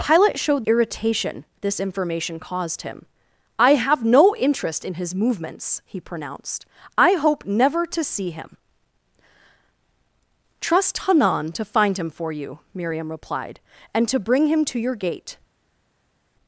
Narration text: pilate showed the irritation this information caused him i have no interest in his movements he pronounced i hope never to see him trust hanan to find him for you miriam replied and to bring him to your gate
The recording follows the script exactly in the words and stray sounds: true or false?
false